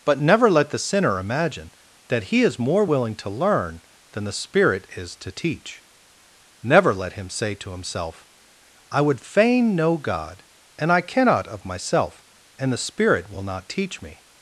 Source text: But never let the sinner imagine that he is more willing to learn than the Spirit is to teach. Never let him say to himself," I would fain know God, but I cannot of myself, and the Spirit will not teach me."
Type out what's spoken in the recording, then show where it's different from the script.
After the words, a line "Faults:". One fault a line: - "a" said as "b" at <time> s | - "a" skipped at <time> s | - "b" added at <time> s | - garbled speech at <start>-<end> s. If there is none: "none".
But never let the sinner imagine that he is more willing to learn than the Spirit is to teach. Never let him say to himself," I would fain know God, and I cannot of myself, and the Spirit will not teach me."
Faults:
- "but" said as "and" at 10.8 s